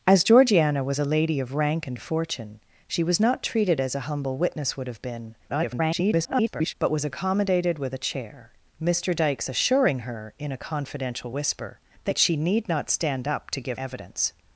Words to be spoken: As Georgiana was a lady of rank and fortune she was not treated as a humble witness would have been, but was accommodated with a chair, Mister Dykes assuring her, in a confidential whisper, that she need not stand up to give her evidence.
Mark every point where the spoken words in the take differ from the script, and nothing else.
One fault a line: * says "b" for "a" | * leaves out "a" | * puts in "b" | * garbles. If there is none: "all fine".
* garbles
* leaves out "her"